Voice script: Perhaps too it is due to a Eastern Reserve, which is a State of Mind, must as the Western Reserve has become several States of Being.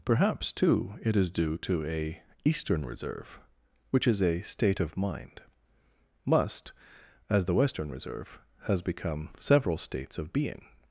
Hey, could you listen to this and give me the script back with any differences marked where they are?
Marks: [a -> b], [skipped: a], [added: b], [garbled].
Perhaps too it is due to a Eastern Reserve, which is a State of Mind, must as the Western Reserve has become several States of Being.